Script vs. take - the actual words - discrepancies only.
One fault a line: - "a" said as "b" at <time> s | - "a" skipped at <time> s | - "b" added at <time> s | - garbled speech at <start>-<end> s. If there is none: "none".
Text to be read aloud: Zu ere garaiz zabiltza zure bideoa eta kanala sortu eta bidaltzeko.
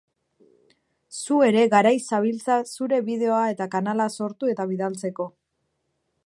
none